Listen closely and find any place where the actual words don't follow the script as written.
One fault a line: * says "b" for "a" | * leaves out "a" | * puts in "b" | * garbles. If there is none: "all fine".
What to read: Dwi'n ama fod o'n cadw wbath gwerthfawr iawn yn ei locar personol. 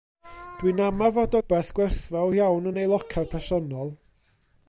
* leaves out "o'n cadw"